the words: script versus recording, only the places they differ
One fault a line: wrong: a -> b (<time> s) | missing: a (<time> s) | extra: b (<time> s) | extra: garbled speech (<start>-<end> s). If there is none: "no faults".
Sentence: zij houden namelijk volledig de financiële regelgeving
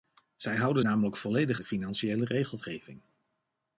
no faults